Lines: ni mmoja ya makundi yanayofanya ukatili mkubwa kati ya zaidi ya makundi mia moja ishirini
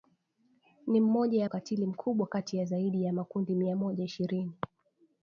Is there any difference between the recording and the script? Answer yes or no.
yes